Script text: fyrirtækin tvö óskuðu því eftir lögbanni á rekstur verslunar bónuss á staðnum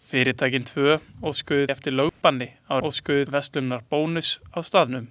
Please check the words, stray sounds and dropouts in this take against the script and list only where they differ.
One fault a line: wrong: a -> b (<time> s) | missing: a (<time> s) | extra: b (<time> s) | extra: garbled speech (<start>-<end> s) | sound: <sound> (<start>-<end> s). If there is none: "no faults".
missing: því (1.7 s)
sound: dropout (2.1-2.2 s)
wrong: rekstur -> óskuðu (2.9 s)